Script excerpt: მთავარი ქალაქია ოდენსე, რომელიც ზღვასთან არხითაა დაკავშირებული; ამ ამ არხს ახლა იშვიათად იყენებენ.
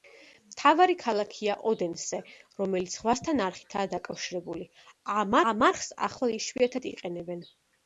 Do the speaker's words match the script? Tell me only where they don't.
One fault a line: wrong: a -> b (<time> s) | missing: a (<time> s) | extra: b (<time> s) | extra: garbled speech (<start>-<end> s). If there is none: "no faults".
no faults